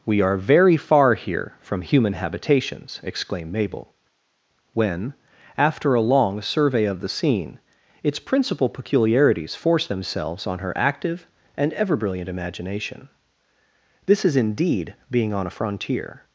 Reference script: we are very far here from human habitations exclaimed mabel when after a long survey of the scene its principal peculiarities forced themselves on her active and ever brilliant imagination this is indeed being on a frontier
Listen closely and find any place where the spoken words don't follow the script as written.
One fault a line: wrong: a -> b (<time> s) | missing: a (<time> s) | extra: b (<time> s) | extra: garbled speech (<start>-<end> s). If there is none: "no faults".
no faults